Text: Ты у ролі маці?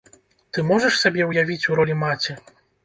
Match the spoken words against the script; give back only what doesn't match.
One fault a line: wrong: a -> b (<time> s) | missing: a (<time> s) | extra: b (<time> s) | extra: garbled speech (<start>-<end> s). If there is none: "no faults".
extra: можаш сябе ўявіць (0.7 s)